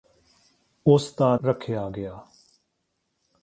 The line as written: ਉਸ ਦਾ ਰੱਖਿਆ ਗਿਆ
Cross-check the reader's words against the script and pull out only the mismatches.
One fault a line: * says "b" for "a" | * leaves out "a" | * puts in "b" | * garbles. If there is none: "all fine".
all fine